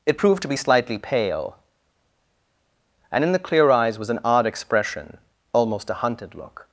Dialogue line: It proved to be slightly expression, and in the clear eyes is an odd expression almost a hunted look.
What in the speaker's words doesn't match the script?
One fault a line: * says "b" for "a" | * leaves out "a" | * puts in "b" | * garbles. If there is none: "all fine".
* says "pale" for "expression"
* says "was" for "is"